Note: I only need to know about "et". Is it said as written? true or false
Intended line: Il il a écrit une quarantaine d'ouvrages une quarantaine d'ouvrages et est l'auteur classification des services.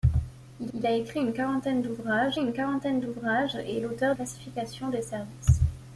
true